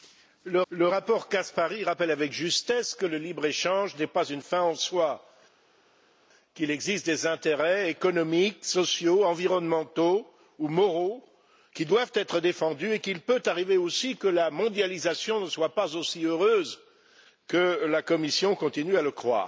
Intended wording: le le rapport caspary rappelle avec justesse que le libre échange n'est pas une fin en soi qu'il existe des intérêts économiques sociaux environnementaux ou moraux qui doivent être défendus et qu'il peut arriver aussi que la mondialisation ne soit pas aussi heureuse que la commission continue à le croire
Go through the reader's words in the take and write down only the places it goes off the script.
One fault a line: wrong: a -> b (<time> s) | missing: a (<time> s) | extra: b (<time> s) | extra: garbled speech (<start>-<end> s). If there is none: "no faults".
no faults